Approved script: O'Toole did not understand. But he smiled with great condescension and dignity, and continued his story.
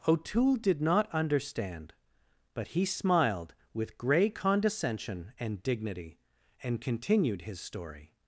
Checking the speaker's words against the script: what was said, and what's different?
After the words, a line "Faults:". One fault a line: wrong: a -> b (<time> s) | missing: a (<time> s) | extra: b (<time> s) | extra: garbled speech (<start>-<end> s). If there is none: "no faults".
O'Toole did not understand. But he smiled with grey condescension and dignity, and continued his story.
Faults:
wrong: great -> grey (4.0 s)